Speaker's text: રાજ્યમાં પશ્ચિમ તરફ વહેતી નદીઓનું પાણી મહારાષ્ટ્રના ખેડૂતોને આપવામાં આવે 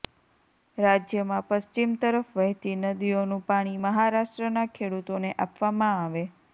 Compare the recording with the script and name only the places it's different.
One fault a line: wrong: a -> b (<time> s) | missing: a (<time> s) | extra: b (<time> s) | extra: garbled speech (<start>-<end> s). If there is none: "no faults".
no faults